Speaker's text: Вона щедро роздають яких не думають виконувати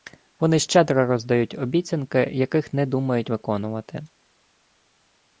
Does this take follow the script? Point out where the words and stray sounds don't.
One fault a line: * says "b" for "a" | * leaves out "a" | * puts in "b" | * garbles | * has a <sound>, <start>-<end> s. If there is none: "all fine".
* says "Вони" for "Вона"
* puts in "обіцянки"